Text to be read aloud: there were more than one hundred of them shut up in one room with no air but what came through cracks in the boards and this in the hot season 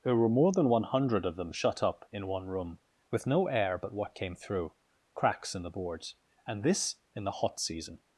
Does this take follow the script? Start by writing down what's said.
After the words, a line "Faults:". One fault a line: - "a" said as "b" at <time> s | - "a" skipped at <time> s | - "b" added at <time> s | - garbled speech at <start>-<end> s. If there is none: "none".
there were more than one hundred of them shut up in one room with no air but what came through cracks in the boards and this in the hot season
Faults:
none